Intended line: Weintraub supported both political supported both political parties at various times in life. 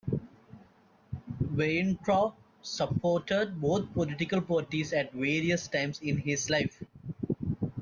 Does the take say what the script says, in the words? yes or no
no